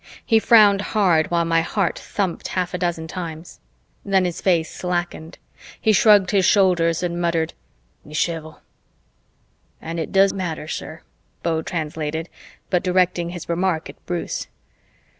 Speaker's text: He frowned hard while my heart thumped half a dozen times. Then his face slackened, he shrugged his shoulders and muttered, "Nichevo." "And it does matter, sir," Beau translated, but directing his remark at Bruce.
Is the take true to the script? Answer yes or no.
yes